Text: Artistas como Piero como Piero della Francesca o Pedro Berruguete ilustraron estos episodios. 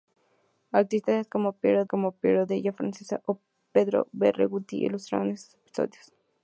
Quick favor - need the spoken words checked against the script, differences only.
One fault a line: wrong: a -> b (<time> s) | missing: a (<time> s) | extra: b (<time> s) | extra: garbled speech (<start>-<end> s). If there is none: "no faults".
no faults